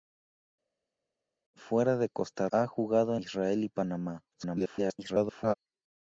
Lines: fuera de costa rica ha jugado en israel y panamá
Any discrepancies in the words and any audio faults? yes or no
yes